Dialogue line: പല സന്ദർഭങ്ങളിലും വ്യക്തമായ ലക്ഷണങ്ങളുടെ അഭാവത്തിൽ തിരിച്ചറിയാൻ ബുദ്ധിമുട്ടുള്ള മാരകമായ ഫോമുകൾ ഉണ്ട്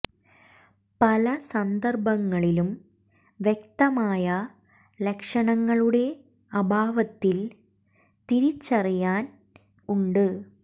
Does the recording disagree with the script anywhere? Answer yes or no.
yes